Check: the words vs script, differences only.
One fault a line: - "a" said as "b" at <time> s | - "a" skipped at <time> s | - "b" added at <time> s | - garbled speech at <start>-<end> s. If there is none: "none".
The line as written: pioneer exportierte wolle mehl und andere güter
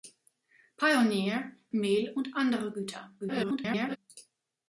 - "exportierte wolle" skipped at 1.6 s
- garbled speech at 3.2-4.0 s